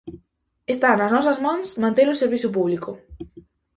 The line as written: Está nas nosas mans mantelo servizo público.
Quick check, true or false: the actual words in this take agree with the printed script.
true